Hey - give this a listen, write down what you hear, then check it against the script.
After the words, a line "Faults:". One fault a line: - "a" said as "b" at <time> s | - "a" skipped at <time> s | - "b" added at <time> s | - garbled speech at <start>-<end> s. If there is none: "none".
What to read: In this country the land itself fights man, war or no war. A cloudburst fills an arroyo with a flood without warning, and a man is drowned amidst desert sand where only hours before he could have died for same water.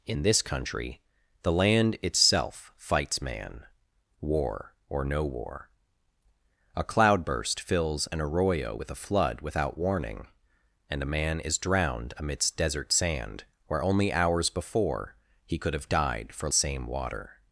In this country the land itself fights man, war or no war. A cloudburst fills an arroyo with a flood without warning, and a man is drowned amidst desert sand where only hours before he could have died for same water.
Faults:
none